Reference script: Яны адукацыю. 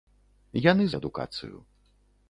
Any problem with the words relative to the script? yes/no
no